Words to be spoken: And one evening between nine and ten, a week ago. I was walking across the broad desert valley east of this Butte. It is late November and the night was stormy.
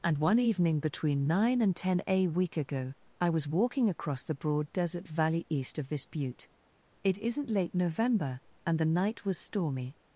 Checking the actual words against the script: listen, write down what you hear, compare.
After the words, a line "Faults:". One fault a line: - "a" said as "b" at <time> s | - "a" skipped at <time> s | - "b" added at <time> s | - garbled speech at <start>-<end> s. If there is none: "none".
And one evening between nine and ten, a week ago. I was walking across the broad desert valley east of this Butte. It isn't late November and the night was stormy.
Faults:
- "is" said as "isn't" at 7.2 s